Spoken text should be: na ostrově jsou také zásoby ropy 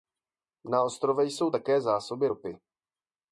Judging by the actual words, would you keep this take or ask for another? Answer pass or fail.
pass